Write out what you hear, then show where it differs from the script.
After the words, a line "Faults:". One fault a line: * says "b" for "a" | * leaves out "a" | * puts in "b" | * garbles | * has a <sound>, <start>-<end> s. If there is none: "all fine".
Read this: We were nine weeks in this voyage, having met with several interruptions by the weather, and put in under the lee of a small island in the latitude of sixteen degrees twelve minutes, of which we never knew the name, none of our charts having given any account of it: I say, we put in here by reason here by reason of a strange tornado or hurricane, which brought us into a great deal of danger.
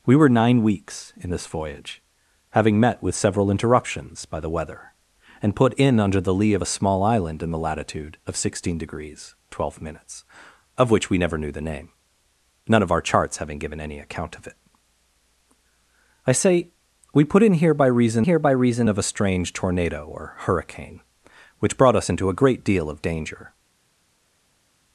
We were nine weeks in this voyage, having met with several interruptions by the weather, and put in under the lee of a small island in the latitude of sixteen degrees twelve minutes, of which we never knew the name, none of our charts having given any account of it: I say, we put in here by reason here by reason of a strange tornado or hurricane, which brought us into a great deal of danger.
Faults:
all fine